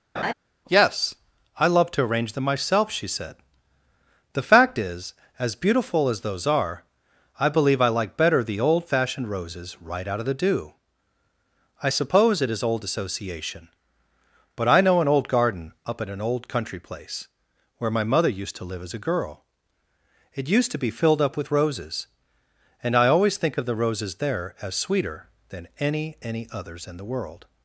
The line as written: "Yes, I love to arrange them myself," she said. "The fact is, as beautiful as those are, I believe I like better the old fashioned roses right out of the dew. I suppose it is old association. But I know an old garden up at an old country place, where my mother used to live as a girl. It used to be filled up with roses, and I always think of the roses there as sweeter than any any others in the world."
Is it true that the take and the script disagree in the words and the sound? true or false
true